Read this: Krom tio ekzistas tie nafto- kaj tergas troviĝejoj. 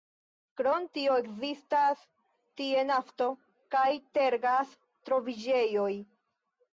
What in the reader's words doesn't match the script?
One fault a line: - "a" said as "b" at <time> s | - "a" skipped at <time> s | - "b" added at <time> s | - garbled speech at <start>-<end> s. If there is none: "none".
none